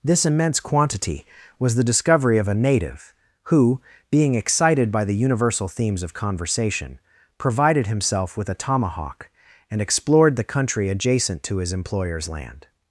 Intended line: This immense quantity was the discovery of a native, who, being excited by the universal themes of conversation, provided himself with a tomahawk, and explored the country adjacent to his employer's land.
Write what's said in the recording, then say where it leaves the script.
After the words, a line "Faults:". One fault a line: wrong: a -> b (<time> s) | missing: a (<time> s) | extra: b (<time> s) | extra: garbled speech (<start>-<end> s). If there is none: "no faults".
This immense quantity was the discovery of a native, who, being excited by the universal themes of conversation, provided himself with a tomahawk, and explored the country adjacent to his employer's land.
Faults:
no faults